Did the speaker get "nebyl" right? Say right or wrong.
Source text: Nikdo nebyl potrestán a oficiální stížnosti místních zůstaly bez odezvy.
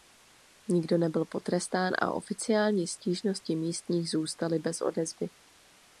right